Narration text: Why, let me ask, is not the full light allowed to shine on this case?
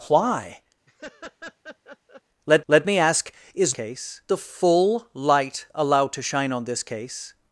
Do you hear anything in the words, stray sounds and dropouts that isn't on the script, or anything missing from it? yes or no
yes